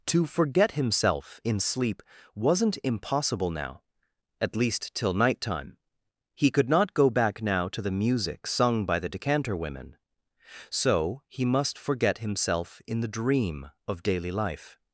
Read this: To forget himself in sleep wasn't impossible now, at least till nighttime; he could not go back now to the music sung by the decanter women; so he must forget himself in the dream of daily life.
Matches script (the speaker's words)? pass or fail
pass